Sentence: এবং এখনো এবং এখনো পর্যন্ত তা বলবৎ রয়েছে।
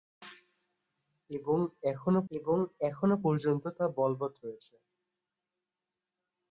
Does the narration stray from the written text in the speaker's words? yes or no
no